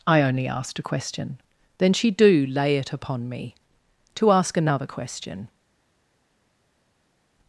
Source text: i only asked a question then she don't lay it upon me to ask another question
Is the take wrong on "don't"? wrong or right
wrong